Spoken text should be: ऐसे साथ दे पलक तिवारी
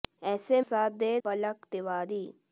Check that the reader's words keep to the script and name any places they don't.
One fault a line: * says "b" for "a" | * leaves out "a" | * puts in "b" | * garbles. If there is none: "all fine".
all fine